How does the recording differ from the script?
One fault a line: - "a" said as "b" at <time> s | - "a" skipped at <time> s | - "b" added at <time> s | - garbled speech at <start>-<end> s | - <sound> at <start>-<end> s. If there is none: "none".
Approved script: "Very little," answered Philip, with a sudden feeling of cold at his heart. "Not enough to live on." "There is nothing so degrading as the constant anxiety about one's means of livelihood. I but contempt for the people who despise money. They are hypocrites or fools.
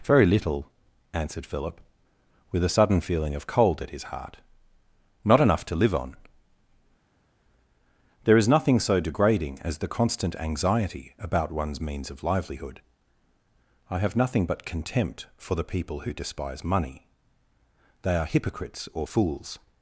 - "have nothing" added at 14.0 s